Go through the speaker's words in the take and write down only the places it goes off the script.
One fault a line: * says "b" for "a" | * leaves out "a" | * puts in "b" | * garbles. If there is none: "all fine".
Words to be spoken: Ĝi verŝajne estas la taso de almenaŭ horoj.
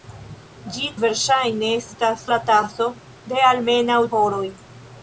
all fine